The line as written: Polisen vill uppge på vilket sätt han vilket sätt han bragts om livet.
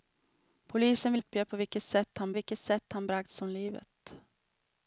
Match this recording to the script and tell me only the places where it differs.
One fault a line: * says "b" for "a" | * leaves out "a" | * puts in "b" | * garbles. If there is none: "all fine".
all fine